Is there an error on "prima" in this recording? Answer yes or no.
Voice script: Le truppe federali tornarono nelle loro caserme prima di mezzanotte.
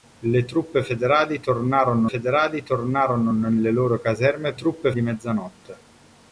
yes